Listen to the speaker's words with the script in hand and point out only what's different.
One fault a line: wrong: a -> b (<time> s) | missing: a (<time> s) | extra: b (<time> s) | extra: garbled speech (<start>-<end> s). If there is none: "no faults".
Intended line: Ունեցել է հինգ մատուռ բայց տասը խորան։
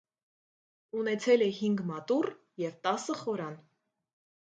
wrong: բայց -> և (2.7 s)